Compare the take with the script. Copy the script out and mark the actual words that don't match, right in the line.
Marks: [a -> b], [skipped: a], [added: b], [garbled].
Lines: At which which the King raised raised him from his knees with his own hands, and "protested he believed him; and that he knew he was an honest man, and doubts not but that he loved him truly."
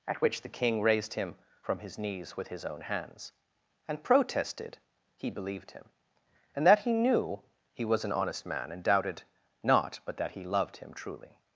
At which [skipped: which] the King raised [skipped: raised] him from his knees with his own hands, and "protested he believed him; and that he knew he was an honest man, and [doubts -> doubted] not but that he loved him truly."